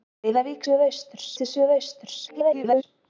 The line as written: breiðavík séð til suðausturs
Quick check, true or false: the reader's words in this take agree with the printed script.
false